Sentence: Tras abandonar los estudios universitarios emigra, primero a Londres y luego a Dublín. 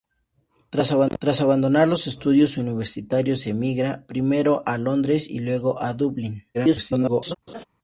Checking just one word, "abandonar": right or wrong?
right